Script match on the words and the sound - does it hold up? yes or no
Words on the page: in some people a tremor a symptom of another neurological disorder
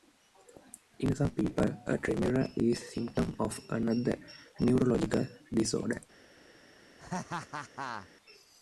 no